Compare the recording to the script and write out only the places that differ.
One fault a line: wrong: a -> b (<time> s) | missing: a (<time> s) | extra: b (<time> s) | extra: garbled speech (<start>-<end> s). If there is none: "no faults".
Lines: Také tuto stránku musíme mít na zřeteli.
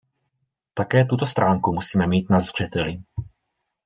no faults